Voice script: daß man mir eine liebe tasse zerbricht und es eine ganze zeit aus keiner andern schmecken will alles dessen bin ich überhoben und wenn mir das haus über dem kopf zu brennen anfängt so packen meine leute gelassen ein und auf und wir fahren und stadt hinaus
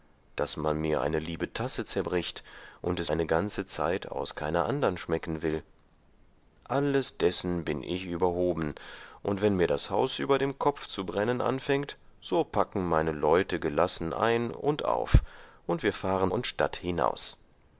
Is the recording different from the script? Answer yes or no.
no